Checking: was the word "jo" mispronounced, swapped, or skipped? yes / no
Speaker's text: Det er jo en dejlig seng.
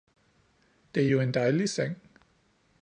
no